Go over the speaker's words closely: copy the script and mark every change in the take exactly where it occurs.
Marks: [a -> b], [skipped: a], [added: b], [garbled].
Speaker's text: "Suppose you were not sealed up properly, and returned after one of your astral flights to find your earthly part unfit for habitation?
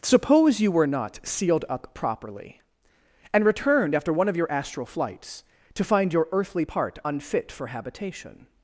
"Suppose you were not sealed up properly, and returned after one of your astral flights to find your earthly part unfit for habitation?